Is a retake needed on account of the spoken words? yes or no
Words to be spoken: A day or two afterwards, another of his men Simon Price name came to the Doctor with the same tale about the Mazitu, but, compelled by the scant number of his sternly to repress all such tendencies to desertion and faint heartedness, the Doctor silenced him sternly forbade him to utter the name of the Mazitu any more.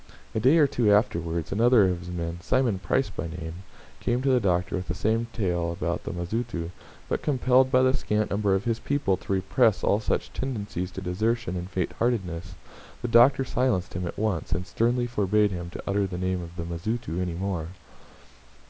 yes